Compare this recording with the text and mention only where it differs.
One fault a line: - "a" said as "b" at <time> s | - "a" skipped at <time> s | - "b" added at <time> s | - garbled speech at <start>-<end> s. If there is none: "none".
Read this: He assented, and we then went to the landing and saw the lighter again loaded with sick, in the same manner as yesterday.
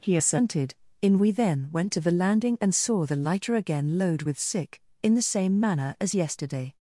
- "and" said as "in" at 1.0 s
- "loaded" said as "load" at 4.0 s